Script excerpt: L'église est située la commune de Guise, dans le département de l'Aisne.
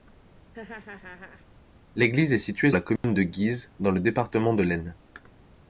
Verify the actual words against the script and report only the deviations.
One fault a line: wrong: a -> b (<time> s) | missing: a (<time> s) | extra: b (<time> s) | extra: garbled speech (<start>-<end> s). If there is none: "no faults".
no faults